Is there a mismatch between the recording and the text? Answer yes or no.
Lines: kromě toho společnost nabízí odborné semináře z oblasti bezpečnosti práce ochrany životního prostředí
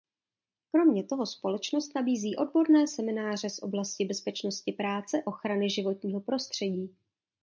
no